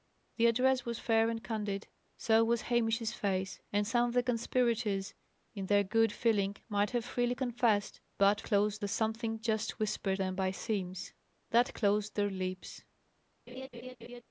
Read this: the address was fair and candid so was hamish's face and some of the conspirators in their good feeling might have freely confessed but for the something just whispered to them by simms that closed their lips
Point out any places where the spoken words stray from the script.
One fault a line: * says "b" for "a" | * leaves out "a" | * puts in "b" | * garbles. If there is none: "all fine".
* says "closed" for "for"
* leaves out "to"